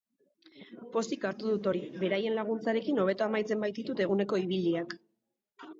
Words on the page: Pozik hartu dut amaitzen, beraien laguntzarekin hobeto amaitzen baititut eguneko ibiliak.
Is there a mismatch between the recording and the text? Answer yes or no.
yes